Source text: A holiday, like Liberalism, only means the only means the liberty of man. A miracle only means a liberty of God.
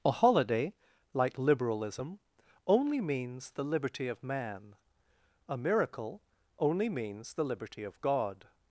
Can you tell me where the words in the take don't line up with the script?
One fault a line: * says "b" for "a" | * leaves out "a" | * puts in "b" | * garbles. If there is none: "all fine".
* leaves out "only means the"
* says "the" for "a"